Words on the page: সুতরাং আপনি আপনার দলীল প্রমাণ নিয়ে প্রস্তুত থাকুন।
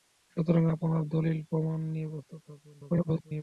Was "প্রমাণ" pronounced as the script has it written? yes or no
yes